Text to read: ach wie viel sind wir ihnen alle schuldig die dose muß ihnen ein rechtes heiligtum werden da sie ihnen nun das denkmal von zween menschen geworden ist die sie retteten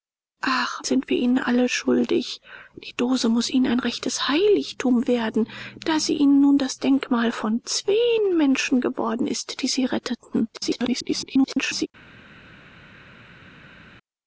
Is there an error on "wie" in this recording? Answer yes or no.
yes